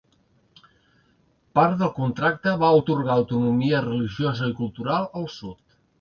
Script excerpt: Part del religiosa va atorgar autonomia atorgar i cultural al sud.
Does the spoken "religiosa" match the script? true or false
false